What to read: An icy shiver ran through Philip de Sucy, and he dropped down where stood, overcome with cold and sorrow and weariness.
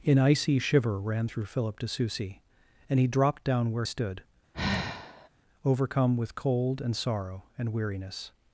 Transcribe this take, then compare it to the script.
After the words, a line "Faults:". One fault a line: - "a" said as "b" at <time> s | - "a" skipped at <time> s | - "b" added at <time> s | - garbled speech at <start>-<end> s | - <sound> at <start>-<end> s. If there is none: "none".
An icy shiver ran through Philip de Sucy, and he dropped down where stood, overcome with cold and sorrow and weariness.
Faults:
- sigh at 4.5-5.3 s